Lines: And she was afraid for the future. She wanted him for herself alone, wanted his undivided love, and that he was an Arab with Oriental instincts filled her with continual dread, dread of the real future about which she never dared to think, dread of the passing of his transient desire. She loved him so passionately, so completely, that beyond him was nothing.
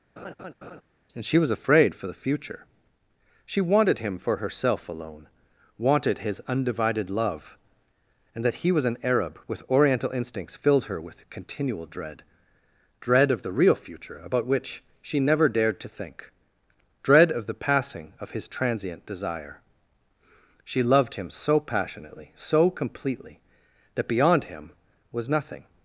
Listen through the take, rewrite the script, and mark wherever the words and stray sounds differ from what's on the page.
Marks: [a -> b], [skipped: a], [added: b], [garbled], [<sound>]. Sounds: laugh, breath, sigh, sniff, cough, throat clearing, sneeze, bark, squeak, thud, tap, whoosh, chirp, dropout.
[laugh] And she was afraid for the future. She wanted him for herself alone, wanted his undivided love, and that he was an Arab with Oriental instincts filled her with continual dread, dread of the real future about which she never dared to think, dread of the passing of his transient desire. She loved him so passionately, so completely, that beyond him was nothing.